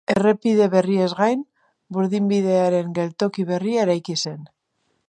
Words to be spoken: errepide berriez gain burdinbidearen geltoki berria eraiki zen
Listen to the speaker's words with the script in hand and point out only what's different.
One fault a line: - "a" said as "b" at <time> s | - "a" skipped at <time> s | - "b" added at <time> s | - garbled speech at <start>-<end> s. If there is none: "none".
none